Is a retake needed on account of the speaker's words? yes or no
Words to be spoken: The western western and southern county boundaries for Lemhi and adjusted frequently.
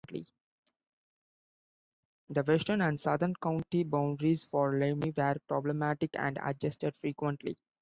yes